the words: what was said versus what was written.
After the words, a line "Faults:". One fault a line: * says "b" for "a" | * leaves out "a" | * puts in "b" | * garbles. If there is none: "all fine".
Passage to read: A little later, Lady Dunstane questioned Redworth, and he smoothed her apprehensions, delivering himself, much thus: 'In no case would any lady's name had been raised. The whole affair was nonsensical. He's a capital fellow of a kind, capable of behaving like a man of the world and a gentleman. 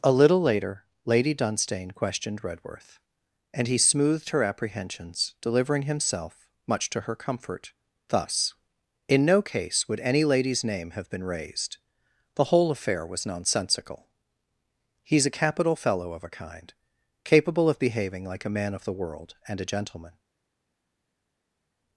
A little later, Lady Dunstane questioned Redworth, and he smoothed her apprehensions, delivering himself, much to her comfort, thus: 'In no case would any lady's name have been raised. The whole affair was nonsensical. He's a capital fellow of a kind, capable of behaving like a man of the world and a gentleman.
Faults:
* puts in "to her comfort"
* says "have" for "had"